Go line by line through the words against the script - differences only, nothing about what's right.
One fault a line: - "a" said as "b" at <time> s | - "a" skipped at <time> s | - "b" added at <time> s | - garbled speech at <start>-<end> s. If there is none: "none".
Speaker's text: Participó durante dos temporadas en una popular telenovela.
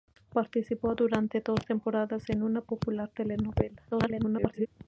- garbled speech at 3.9-4.7 s